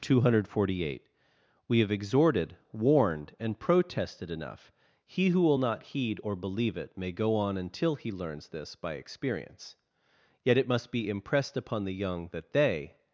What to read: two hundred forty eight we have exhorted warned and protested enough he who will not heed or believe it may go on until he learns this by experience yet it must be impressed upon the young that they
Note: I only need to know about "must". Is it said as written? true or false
true